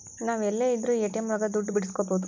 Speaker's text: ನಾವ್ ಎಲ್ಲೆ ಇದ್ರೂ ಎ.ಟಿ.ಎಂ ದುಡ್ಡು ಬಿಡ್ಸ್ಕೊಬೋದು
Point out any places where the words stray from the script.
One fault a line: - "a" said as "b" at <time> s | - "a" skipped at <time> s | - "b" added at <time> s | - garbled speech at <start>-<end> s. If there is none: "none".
- "ಒಳಗ" added at 1.3 s